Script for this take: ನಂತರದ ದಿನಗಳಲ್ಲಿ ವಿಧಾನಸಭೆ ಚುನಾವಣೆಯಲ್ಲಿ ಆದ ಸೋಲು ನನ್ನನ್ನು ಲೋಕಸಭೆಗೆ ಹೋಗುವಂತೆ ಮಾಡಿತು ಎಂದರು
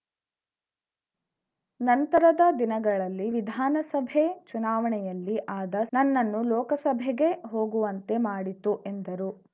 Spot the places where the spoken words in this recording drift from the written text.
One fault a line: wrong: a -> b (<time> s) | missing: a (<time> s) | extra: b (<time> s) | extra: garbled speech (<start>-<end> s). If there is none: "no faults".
missing: ಸೋಲು (5.7 s)